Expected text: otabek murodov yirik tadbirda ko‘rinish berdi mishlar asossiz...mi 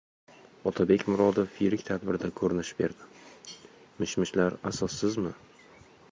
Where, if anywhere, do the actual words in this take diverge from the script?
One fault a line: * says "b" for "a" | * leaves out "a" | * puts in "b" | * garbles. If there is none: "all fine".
* puts in "mish"